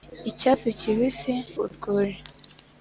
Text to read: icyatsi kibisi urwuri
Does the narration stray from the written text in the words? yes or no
no